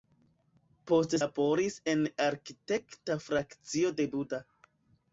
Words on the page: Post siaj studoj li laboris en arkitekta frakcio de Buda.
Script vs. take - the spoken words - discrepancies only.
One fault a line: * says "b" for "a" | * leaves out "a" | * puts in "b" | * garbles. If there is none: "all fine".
* leaves out "siaj studoj li"